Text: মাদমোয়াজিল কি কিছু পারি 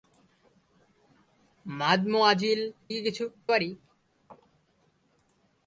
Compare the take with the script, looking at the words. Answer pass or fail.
pass